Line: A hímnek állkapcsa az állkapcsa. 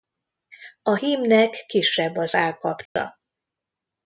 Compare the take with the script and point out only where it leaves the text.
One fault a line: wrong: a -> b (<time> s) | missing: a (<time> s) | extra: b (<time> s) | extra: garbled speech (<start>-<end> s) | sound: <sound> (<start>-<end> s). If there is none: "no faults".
wrong: állkapcsa -> kisebb (1.7 s)
sound: dropout (2.9-3.0 s)